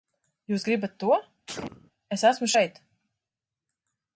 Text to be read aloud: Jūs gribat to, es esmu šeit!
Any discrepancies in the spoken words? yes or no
no